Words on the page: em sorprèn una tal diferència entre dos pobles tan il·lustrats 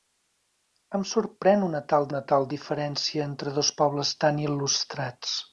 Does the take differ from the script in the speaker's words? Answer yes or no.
yes